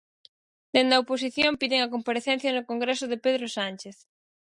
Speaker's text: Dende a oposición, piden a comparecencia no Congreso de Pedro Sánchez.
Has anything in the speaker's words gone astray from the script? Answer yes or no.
no